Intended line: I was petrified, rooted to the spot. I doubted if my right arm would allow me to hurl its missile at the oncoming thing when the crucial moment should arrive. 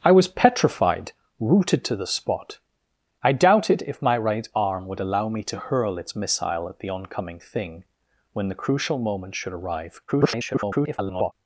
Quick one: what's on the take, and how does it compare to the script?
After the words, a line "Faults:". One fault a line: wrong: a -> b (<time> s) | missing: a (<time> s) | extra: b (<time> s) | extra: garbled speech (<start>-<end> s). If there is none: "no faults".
I was petrified, rooted to the spot. I doubted if my right arm would allow me to hurl its missile at the oncoming thing when the crucial moment should arrive. [garbled]
Faults:
extra: garbled speech (10.1-11.3 s)